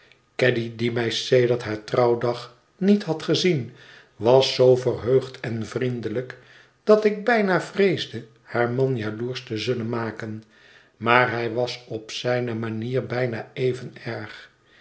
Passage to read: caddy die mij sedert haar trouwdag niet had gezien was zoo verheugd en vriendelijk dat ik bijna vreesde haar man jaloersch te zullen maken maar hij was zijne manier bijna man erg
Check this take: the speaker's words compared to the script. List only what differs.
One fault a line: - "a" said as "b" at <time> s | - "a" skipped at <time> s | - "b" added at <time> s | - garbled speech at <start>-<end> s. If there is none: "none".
- "op" added at 11.9 s
- "man" said as "even" at 13.5 s